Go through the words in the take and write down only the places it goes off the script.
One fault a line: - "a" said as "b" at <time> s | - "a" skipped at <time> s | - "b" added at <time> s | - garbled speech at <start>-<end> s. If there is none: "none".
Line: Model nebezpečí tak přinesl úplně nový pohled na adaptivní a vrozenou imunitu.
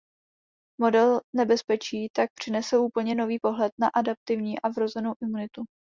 none